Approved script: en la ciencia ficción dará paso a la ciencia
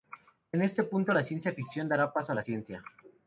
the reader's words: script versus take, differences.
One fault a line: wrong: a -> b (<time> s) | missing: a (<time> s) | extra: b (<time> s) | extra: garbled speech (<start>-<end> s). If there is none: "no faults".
extra: este punto (0.6 s)